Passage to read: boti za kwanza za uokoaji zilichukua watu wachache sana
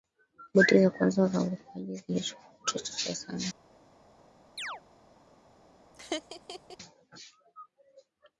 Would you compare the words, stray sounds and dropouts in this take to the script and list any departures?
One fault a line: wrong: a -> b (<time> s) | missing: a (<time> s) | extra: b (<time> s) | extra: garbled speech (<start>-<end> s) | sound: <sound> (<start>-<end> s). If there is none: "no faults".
sound: chirp (4.6-4.8 s)
sound: laugh (5.9-6.8 s)